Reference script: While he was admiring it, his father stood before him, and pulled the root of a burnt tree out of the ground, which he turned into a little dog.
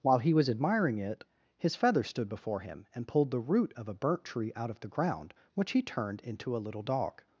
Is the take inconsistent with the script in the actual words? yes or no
yes